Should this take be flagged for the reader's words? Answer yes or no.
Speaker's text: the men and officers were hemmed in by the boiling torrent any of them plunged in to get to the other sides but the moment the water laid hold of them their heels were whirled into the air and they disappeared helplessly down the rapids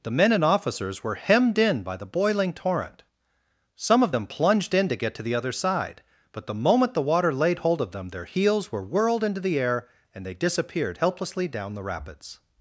yes